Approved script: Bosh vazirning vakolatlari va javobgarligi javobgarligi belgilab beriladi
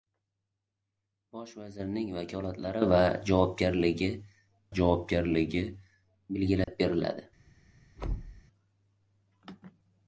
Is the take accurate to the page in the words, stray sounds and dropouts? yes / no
no